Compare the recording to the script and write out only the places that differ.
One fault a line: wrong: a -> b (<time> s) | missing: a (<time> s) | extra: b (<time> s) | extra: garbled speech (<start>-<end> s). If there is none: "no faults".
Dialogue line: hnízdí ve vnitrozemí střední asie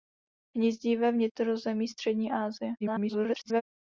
extra: garbled speech (2.8-3.6 s)